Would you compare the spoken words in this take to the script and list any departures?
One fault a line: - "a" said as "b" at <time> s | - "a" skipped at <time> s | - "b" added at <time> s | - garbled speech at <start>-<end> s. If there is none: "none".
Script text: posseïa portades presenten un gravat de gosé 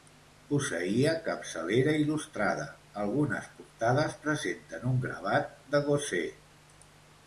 - "capçalera il·lustrada algunes" added at 1.3 s